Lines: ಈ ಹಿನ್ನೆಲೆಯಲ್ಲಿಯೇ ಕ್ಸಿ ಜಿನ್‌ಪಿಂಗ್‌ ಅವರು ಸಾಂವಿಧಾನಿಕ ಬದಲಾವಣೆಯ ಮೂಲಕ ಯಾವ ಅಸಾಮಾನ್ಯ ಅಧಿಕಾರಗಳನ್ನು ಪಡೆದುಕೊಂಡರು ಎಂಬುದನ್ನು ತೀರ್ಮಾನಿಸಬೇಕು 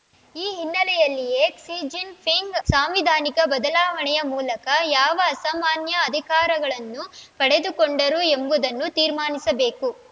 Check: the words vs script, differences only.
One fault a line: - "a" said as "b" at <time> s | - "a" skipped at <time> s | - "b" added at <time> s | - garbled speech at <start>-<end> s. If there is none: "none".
- "ಅವರು" skipped at 2.5 s